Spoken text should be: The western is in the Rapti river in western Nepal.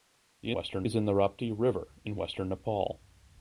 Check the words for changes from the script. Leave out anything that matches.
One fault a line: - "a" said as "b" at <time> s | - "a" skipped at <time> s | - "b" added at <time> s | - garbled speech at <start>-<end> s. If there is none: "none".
none